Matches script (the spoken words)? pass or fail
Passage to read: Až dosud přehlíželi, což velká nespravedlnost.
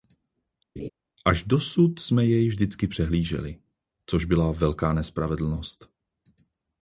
fail